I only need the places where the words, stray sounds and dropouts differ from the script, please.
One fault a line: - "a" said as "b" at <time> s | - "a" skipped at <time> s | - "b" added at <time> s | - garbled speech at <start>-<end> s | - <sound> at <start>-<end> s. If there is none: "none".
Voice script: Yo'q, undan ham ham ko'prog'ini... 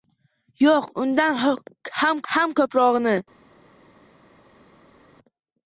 none